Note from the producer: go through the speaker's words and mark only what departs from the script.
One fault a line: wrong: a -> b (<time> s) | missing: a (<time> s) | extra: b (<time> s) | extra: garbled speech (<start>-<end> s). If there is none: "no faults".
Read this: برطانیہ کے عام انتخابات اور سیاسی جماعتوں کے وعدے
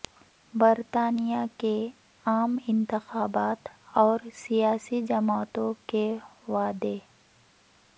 no faults